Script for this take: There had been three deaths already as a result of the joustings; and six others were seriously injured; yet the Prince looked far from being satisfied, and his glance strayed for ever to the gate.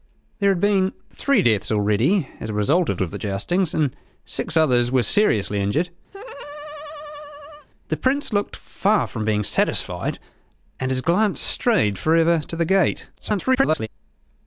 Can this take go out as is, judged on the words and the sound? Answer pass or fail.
fail